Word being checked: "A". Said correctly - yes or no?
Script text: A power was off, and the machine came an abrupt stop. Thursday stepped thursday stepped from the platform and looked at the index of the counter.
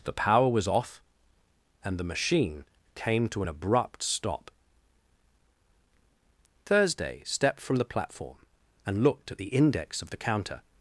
no